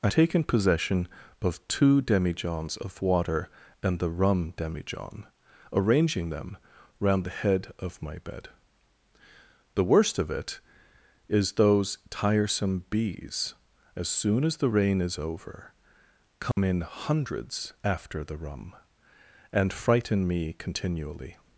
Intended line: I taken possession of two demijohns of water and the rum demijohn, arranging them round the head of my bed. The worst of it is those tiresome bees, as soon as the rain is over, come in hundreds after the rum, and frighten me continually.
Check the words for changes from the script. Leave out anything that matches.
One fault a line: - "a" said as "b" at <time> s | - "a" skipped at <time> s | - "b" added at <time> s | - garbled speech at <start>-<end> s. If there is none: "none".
none